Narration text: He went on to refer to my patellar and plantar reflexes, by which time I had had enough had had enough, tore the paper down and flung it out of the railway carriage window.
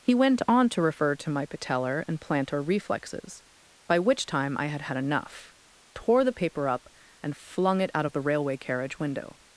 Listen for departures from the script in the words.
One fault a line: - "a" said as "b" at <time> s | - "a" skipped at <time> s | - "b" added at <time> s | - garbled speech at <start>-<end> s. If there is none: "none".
- "had had enough" skipped at 5.5 s
- "down" said as "up" at 6.7 s